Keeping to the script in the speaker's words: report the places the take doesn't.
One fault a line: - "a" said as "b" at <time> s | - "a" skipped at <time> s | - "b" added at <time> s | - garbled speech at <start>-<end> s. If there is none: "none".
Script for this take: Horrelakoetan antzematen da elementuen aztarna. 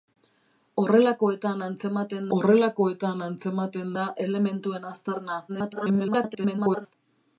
- "horrelakoetan antzematen" added at 2.4 s
- garbled speech at 5.5-6.9 s